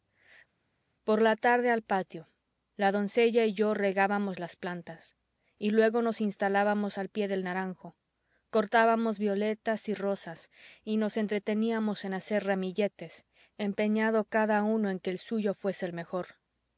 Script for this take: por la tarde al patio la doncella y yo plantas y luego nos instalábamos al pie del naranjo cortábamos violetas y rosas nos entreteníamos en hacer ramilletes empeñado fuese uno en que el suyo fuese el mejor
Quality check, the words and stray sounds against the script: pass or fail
fail